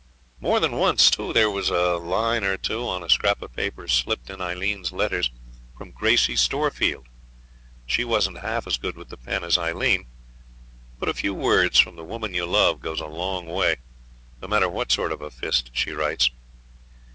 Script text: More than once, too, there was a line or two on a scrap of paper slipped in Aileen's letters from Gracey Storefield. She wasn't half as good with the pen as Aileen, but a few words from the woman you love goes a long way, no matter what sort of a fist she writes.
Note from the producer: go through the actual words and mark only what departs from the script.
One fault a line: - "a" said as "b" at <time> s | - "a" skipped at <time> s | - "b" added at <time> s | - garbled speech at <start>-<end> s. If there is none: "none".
none